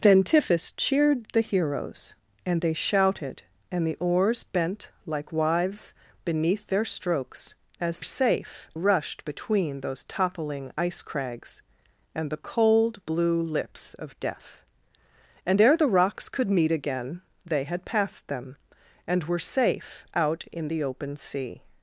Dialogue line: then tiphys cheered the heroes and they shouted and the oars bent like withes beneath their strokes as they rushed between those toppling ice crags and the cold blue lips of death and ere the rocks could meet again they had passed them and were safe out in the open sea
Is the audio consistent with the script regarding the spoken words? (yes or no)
no